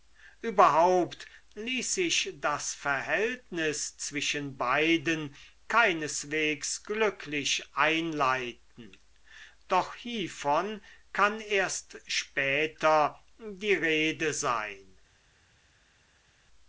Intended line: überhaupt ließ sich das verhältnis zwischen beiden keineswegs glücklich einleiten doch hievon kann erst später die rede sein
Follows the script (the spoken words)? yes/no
yes